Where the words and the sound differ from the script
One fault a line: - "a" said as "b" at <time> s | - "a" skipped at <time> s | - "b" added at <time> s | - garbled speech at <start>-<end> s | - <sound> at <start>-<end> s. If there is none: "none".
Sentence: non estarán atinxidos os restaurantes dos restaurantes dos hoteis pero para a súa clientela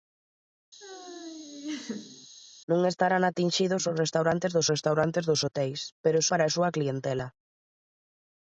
- laugh at 0.8-2.3 s